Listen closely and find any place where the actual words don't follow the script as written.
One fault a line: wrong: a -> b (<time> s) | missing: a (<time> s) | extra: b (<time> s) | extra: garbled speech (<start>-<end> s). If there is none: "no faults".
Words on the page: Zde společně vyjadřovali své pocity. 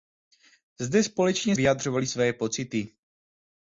no faults